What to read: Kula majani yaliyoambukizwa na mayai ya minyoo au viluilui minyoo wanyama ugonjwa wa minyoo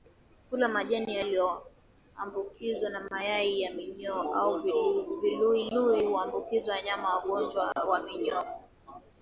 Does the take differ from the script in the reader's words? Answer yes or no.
yes